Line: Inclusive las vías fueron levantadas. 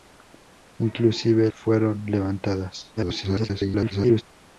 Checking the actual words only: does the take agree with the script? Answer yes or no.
no